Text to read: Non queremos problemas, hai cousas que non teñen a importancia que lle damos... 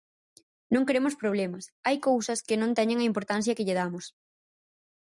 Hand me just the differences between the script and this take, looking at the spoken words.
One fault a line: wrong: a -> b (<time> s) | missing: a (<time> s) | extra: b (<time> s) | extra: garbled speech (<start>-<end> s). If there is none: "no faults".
no faults